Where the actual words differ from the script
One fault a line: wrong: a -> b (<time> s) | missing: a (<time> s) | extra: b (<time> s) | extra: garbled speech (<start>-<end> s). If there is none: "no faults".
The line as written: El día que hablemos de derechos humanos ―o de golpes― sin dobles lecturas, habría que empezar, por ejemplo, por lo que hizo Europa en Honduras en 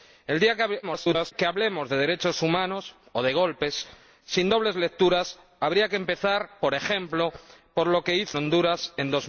extra: garbled speech (0.8-1.3 s)
missing: Europa en (8.4 s)